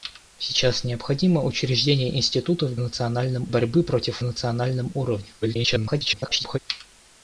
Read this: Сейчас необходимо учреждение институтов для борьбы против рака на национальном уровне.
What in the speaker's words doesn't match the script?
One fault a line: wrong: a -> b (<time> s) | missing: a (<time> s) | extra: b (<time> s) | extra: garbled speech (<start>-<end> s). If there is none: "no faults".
wrong: для -> национальном (2.8 s)
missing: рака на (4.2 s)
extra: garbled speech (5.4-6.6 s)